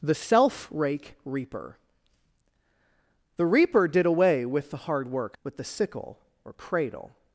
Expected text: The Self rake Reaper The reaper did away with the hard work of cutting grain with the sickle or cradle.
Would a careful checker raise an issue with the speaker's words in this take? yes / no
yes